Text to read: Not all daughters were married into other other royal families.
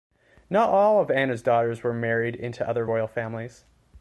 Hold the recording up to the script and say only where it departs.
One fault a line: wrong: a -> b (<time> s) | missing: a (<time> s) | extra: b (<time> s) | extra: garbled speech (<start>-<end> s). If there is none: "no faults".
extra: of Anna's (1.0 s)
missing: other (2.9 s)